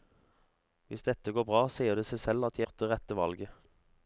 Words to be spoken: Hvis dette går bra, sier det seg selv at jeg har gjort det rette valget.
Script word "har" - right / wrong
wrong